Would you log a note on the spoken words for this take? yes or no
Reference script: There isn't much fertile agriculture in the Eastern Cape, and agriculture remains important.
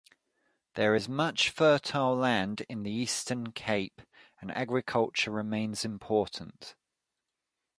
yes